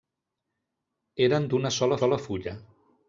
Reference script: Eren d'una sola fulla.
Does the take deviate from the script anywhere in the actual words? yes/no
yes